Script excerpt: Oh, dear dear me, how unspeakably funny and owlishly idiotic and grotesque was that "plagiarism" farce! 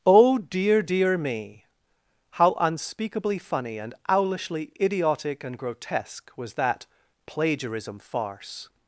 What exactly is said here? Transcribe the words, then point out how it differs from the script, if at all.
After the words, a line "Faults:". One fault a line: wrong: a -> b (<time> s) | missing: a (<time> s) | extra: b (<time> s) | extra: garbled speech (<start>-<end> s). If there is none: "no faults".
Oh, dear dear me, how unspeakably funny and owlishly idiotic and grotesque was that "plagiarism" farce!
Faults:
no faults